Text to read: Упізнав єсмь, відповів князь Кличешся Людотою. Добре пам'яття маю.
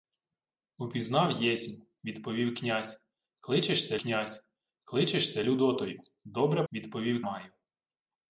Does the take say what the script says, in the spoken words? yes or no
no